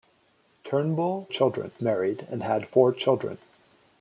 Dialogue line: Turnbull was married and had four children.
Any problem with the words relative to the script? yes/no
yes